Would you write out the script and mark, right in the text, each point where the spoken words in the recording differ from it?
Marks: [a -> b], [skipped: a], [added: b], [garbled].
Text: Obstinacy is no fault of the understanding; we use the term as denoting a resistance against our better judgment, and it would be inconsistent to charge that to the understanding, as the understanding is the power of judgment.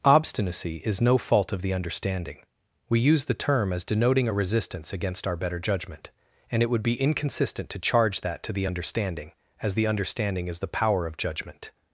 Obstinacy is no fault of the understanding; we use the term as denoting a resistance against our better judgment, and it would be inconsistent to charge that to the understanding, as the understanding is the power of judgment.